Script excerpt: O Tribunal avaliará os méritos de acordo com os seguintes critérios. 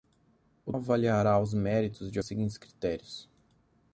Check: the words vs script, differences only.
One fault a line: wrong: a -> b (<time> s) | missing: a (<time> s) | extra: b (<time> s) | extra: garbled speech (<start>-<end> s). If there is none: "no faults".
missing: Tribunal (0.7 s)
missing: acordo com (2.2 s)